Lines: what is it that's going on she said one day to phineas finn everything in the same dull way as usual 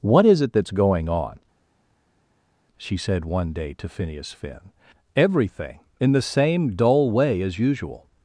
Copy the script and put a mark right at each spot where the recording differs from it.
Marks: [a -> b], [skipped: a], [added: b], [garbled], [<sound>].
what is it that's going on she said one day to phineas finn everything in the same dull way as usual